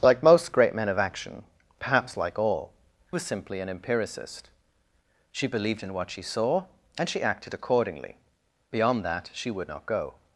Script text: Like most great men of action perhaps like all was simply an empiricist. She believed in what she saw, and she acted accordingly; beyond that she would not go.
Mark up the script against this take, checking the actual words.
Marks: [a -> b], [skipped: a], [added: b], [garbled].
Like most great men of action perhaps like all was simply an empiricist. She believed in what she saw, and she acted accordingly; beyond that she would not go.